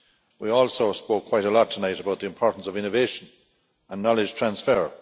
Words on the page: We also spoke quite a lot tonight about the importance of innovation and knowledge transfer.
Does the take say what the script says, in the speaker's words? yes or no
yes